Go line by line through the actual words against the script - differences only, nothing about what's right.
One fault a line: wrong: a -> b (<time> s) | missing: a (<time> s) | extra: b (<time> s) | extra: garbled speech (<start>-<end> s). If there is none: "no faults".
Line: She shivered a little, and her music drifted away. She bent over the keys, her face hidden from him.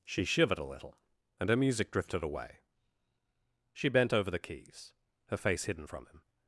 no faults